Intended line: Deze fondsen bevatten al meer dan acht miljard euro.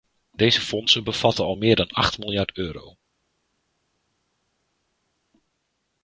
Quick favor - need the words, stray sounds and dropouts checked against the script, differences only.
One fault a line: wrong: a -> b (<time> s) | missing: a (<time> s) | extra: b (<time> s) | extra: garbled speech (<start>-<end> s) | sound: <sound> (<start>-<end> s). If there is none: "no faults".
no faults